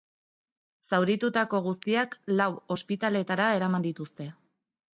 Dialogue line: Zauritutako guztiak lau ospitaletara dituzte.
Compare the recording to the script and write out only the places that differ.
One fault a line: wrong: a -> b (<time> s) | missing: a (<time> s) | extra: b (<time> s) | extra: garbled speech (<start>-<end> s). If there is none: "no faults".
extra: eraman (3.6 s)